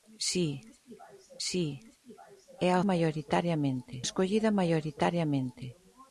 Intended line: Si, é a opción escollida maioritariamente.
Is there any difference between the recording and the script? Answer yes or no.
yes